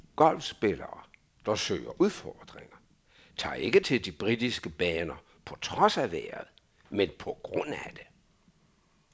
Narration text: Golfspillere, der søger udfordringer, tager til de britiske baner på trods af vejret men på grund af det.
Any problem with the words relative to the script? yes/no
yes